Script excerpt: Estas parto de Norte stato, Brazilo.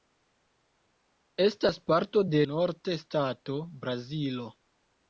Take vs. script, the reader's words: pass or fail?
pass